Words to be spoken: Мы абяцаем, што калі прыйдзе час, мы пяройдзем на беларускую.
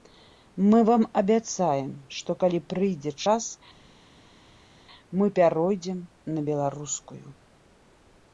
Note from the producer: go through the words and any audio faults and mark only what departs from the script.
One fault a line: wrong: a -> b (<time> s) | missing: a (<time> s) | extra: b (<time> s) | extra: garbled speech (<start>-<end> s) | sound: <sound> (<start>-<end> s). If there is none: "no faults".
extra: вам (0.9 s)